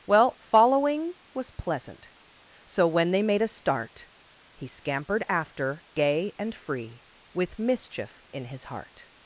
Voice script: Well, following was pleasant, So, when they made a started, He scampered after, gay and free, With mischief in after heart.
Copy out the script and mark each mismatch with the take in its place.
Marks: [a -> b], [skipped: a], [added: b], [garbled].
Well, following was pleasant, So, when they made a [started, -> start] He scampered after, gay and free, With mischief in [after -> his] heart.